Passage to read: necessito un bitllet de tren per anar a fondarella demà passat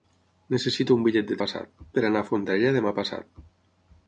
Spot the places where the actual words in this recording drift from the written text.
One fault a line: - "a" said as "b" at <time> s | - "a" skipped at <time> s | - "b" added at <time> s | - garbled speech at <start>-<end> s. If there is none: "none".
- "tren" said as "passat" at 1.4 s